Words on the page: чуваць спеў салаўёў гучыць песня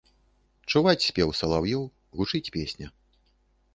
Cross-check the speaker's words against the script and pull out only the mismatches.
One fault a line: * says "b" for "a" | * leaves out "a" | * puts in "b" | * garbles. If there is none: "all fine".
all fine